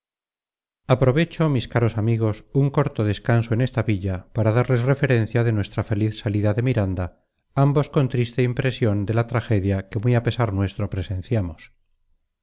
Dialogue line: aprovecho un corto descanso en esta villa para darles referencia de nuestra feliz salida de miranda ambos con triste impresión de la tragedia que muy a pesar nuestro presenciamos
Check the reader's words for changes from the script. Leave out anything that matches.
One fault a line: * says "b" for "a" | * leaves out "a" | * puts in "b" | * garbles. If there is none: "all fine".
* puts in "mis caros amigos"